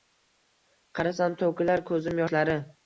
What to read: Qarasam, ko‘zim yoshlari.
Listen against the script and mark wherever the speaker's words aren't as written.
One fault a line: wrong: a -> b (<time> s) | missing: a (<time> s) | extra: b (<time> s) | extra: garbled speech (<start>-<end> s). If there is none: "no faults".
extra: to‘kilar (1.4 s)